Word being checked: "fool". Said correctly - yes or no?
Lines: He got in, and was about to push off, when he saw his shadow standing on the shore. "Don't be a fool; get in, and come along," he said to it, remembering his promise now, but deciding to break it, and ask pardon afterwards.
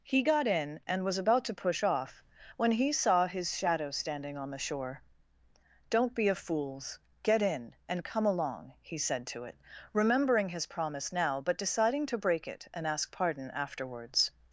no